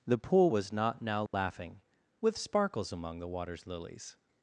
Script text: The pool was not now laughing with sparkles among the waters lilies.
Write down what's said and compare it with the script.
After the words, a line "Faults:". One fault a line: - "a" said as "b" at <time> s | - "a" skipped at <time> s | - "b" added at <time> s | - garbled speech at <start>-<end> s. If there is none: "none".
The pool was not now laughing with sparkles among the waters lilies.
Faults:
none